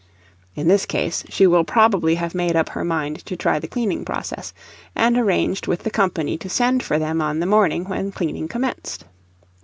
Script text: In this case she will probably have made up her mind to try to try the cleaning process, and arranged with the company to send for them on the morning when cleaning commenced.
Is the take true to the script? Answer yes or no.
no